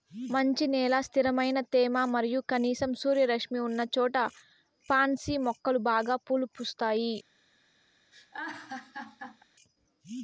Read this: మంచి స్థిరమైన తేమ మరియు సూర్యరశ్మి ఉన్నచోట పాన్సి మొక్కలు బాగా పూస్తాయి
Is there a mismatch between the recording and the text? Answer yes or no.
yes